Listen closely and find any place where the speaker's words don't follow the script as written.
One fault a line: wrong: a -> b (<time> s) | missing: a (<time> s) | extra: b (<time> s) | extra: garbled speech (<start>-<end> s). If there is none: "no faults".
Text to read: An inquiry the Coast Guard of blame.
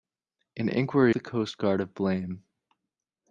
no faults